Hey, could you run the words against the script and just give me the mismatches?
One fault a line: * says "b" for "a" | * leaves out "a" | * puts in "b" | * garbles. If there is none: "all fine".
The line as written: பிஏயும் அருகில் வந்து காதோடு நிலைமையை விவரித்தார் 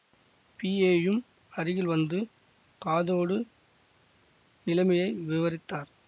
all fine